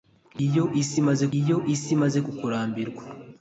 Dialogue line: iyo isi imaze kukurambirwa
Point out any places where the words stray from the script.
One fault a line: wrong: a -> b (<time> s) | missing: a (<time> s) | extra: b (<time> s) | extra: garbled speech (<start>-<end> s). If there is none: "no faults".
extra: iyo isi imaze (1.4 s)